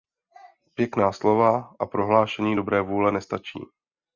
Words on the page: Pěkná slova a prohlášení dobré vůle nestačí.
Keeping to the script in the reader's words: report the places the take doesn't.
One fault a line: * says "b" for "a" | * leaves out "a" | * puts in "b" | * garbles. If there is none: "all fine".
all fine